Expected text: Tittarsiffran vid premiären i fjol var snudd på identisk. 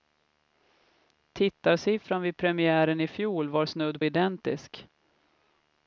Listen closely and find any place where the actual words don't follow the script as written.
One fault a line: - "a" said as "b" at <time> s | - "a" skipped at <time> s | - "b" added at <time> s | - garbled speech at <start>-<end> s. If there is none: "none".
- "på" skipped at 4.0 s